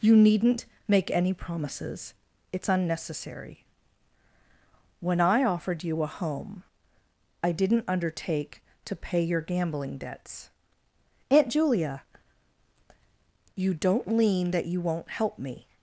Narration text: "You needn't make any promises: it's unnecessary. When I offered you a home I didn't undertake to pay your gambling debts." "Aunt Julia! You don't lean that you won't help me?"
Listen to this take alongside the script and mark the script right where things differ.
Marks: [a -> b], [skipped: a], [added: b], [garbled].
"You needn't make any promises: it's unnecessary. When I offered you a home I didn't undertake to pay your gambling debts." "Aunt Julia! You don't lean that you won't help me?"